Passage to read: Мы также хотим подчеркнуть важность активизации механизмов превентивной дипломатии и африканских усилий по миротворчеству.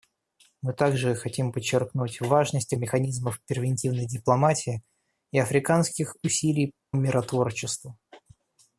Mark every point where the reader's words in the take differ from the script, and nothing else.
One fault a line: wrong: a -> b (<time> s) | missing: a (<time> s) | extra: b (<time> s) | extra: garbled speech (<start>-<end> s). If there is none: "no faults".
missing: активизации (2.7 s)
missing: по (6.7 s)